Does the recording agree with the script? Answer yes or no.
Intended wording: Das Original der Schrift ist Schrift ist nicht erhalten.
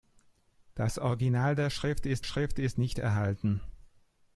yes